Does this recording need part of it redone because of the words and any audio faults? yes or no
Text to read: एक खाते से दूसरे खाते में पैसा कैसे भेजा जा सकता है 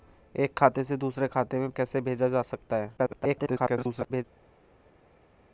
yes